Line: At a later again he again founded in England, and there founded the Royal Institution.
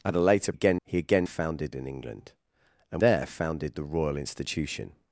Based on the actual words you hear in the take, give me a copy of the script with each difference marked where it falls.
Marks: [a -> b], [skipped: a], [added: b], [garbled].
At a later again he again founded in England, and there founded the Royal Institution.